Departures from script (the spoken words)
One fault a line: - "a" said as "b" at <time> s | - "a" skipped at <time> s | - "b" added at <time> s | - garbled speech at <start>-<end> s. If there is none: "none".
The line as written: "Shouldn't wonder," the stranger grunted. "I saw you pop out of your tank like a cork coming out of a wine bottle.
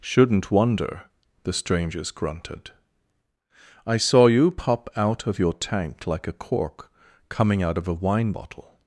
- "stranger" said as "strangers" at 1.5 s